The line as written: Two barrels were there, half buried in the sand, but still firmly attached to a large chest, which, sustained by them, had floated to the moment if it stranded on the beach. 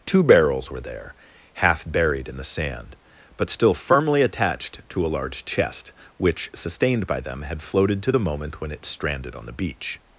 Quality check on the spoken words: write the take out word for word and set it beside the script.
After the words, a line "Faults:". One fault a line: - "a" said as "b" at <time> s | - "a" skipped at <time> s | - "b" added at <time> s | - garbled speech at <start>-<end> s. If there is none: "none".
Two barrels were there, half buried in the sand, but still firmly attached to a large chest, which, sustained by them, had floated to the moment when it stranded on the beach.
Faults:
- "if" said as "when" at 8.6 s